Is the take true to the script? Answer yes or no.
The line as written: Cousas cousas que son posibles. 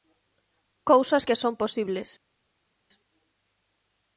no